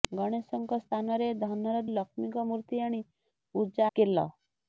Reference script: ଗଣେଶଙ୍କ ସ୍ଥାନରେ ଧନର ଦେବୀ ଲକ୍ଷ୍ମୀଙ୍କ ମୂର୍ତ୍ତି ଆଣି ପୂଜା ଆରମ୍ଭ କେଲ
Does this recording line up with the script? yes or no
no